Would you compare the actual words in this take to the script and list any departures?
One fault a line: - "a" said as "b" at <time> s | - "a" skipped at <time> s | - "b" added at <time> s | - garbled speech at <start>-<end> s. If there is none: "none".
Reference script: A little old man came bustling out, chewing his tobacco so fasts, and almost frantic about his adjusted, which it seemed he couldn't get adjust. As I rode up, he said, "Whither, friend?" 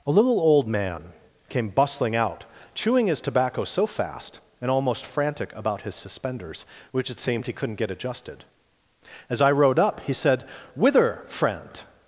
- "fasts" said as "fast" at 3.9 s
- "adjusted" said as "suspenders" at 6.0 s
- "adjust" said as "adjusted" at 7.9 s